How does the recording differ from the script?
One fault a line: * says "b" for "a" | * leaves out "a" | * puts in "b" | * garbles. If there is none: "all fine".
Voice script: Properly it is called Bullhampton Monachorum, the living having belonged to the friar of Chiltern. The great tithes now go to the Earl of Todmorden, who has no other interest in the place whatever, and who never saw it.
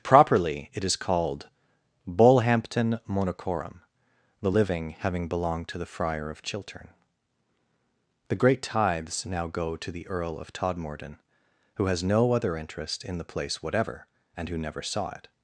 all fine